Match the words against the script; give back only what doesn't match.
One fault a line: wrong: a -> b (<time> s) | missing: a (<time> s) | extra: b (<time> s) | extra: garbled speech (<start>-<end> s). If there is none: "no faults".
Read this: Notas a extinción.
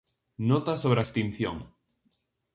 extra: sobre (0.8 s)